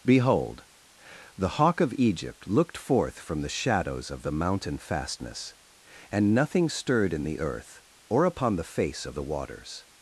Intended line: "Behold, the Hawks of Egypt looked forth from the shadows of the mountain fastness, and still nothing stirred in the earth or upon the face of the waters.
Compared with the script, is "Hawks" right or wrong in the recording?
wrong